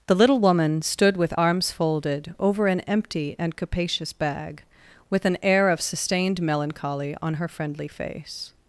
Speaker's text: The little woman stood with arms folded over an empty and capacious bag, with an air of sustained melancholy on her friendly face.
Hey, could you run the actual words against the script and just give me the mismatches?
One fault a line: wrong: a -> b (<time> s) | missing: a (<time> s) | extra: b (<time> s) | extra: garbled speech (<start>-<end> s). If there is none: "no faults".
no faults